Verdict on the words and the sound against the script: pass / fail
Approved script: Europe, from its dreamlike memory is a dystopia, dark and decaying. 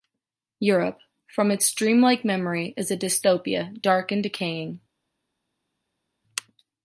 pass